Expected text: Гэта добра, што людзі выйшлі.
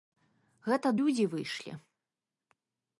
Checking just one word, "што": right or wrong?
wrong